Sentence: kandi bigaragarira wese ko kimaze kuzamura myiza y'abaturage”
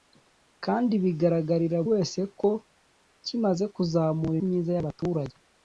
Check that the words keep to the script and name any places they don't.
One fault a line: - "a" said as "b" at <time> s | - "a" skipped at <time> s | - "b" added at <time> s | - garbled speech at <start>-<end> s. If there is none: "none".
none